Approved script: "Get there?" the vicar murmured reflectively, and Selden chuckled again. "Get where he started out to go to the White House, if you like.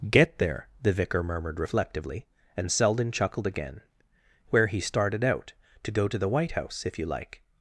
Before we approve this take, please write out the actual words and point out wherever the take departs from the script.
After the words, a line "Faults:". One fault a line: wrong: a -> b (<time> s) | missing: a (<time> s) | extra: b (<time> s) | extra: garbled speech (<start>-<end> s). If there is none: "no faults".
"Get there?" the vicar murmured reflectively, and Selden chuckled again. "Where he started out to go to the White House, if you like.
Faults:
missing: Get (3.8 s)